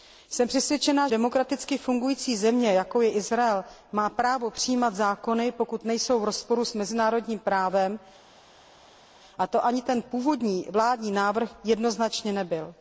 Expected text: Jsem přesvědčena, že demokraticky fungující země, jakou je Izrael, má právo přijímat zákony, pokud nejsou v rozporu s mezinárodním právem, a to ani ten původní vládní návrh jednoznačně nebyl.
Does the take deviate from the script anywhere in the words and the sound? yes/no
yes